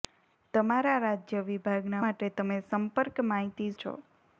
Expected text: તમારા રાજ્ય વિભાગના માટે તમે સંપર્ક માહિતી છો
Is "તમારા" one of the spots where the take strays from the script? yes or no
no